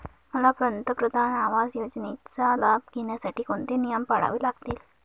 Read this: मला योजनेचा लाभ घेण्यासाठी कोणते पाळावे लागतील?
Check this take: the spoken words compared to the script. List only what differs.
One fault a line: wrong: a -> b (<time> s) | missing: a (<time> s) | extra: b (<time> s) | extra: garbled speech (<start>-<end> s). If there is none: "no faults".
extra: पंतप्रधान आवास (0.6 s)
extra: नियम (3.8 s)